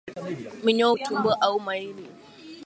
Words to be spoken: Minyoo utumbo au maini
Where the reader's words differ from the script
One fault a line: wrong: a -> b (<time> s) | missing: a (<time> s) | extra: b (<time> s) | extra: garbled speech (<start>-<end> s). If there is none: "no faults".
no faults